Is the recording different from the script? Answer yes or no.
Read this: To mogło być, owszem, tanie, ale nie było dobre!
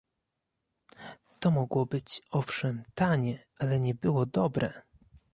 no